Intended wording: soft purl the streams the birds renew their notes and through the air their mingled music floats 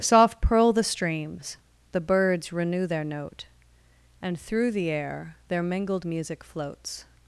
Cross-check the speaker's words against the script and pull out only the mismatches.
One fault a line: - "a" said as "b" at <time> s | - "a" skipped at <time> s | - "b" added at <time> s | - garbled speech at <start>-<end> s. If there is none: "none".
- "notes" said as "note" at 3.0 s